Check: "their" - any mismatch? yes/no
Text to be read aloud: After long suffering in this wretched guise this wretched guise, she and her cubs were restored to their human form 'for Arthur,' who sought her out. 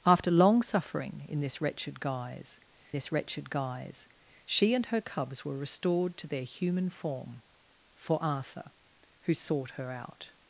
no